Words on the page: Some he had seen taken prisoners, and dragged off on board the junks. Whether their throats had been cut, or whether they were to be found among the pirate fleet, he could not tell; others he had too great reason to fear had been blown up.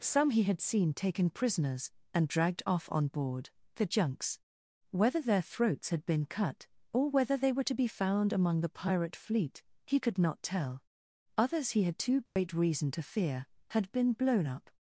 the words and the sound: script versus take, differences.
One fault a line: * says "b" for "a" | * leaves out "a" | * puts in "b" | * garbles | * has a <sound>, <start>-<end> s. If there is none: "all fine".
* has a dropout, 12.3-12.4 s